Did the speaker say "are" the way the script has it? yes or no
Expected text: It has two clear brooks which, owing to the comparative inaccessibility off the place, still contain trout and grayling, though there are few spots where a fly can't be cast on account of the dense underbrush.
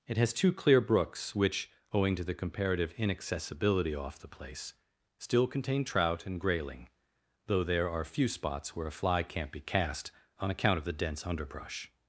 yes